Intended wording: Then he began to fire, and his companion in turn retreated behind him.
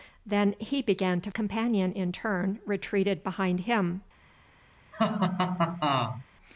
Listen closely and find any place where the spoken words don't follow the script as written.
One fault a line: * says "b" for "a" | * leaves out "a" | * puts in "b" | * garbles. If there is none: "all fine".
* leaves out "fire and his"